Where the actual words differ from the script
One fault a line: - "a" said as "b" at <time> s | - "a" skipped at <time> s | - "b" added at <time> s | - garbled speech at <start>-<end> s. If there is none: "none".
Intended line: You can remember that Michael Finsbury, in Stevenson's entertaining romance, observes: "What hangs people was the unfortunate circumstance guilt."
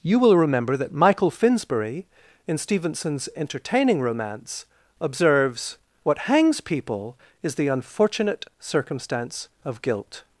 - "can" said as "will" at 0.2 s
- "was" said as "is" at 7.4 s
- "of" added at 9.6 s